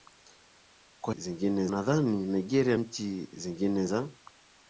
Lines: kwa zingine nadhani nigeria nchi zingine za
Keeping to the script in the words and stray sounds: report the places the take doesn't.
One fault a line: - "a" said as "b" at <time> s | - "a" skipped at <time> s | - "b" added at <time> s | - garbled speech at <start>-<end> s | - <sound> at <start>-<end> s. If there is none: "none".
none